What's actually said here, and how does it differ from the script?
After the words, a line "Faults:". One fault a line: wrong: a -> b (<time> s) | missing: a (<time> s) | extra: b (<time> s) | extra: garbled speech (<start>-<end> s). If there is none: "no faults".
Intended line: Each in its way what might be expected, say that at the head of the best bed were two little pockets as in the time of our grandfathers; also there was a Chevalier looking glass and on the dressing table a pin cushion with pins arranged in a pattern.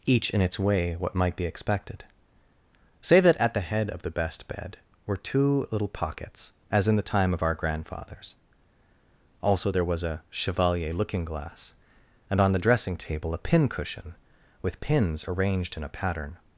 Each in its way what might be expected, say that at the head of the best bed were two little pockets as in the time of our grandfathers; also there was a Chevalier looking glass and on the dressing table a pin cushion with pins arranged in a pattern.
Faults:
no faults